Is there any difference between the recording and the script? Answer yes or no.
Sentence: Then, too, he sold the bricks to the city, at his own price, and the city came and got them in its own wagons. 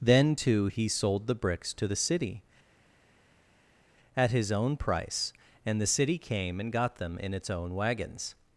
no